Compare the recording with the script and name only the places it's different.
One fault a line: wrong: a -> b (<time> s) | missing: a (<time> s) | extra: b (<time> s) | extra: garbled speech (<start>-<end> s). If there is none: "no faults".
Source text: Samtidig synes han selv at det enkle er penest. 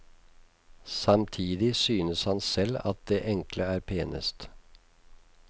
no faults